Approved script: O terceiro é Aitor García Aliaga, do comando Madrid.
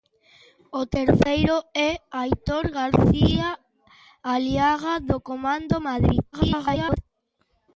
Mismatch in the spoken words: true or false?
true